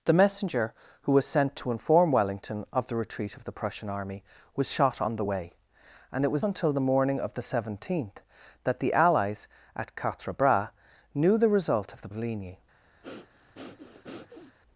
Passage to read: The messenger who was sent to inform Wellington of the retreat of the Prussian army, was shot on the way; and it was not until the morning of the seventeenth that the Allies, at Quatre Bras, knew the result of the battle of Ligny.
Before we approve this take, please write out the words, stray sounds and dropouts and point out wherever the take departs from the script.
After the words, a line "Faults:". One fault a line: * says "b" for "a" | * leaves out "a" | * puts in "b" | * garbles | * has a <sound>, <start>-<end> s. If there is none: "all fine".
The messenger who was sent to inform Wellington of the retreat of the Prussian army, was shot on the way; and it was until the morning of the seventeenth that the Allies, at Quatre Bras, knew the result of the of Ligny.
Faults:
* leaves out "not"
* leaves out "battle"
* has a breath, 13.0-14.6 s